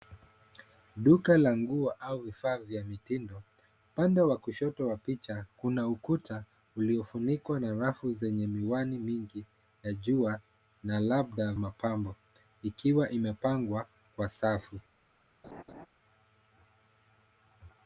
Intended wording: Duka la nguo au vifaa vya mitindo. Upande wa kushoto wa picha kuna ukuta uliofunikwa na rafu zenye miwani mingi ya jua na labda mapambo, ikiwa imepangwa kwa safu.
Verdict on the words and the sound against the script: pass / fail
fail